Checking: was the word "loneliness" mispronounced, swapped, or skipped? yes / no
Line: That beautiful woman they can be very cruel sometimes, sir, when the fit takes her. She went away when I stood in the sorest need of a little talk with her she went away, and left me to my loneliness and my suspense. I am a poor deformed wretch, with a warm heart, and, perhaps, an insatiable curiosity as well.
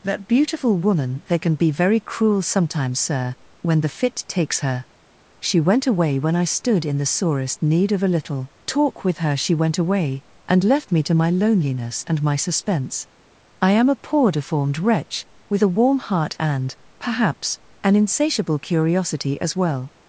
no